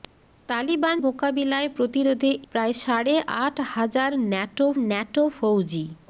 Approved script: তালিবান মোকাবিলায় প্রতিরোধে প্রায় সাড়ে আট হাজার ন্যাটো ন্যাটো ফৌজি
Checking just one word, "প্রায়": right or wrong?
right